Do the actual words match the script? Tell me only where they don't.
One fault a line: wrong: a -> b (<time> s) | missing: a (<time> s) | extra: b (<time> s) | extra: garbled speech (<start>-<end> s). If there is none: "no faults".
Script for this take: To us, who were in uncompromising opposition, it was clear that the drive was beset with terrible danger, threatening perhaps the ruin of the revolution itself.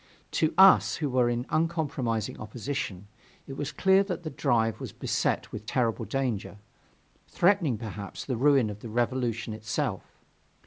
no faults